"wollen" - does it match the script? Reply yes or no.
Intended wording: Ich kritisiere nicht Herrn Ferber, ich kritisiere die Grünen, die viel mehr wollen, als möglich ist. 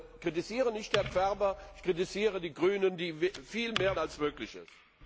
no